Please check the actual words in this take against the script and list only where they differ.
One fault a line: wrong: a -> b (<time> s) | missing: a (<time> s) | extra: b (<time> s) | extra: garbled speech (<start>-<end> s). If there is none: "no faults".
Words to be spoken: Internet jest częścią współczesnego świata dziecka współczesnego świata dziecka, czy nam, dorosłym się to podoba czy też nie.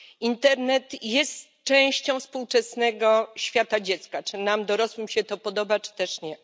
missing: współczesnego świata dziecka (4.2 s)